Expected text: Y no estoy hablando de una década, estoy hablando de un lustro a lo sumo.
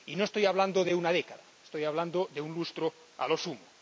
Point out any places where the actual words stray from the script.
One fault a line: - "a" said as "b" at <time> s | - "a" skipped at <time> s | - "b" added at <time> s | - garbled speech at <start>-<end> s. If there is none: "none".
none